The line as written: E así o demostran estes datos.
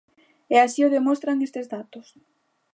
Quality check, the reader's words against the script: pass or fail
pass